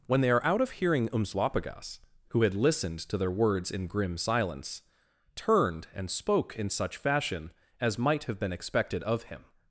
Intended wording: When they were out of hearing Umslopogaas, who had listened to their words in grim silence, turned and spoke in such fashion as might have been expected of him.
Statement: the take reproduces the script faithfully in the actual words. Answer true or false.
false